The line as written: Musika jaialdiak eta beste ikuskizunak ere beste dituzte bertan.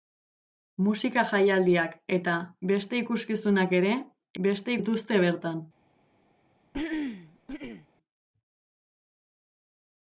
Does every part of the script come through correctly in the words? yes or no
yes